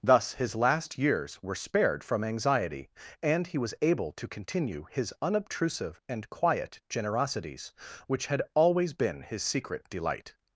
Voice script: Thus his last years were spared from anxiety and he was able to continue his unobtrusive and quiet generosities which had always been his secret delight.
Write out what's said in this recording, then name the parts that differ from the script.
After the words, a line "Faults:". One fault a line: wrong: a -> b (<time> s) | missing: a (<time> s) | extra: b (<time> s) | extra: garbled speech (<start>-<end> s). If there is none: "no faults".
Thus his last years were spared from anxiety and he was able to continue his unobtrusive and quiet generosities which had always been his secret delight.
Faults:
no faults